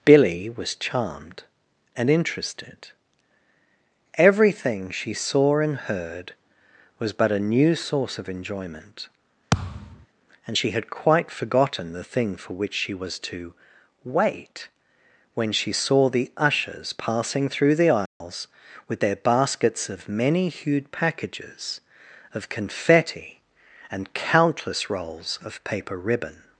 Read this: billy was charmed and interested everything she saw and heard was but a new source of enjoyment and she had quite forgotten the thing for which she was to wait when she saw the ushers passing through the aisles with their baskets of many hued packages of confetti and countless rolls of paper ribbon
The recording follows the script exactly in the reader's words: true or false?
true